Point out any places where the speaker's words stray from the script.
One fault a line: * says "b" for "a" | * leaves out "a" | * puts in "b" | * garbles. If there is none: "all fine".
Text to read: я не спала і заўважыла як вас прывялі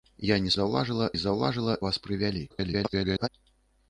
* says "заўважыла" for "спала"
* leaves out "як"
* garbles